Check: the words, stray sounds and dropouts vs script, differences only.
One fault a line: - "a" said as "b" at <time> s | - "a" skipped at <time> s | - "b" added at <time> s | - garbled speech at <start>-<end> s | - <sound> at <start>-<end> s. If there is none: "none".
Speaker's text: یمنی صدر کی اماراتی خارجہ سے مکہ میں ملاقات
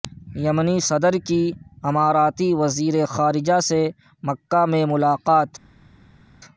- "وزیر" added at 2.5 s